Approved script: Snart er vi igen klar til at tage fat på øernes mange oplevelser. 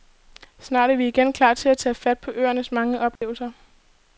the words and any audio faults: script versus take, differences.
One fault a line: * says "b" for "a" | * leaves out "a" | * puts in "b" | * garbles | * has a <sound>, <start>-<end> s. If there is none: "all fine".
* has a dropout, 3.2-3.2 s